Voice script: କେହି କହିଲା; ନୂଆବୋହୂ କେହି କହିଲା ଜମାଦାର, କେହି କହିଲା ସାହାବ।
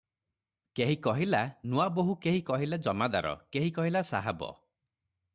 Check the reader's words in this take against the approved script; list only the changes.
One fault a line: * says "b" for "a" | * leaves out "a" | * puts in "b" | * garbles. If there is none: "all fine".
all fine